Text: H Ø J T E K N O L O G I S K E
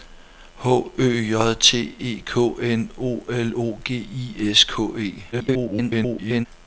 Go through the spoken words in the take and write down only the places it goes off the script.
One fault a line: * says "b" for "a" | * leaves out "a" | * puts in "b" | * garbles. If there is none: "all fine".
* garbles